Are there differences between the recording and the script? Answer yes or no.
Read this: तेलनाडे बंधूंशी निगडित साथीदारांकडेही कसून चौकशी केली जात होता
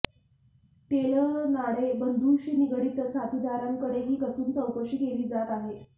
yes